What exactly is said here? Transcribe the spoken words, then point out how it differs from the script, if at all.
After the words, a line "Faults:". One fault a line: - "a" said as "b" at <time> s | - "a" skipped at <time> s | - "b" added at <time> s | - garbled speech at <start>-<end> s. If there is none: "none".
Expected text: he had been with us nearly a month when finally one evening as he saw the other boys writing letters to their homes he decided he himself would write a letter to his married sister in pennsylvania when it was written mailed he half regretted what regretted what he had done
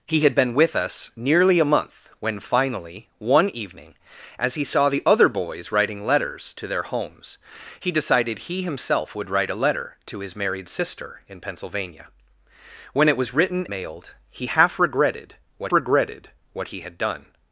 he had been with us nearly a month when finally one evening as he saw the other boys writing letters to their homes he decided he himself would write a letter to his married sister in pennsylvania when it was written mailed he half regretted what regretted what he had done
Faults:
none